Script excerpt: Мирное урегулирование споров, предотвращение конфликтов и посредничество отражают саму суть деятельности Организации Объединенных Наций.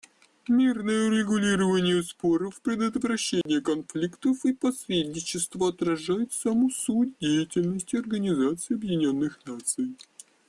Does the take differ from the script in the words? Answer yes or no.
no